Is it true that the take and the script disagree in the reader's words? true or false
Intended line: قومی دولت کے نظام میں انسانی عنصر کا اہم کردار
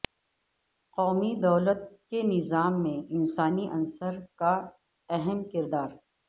false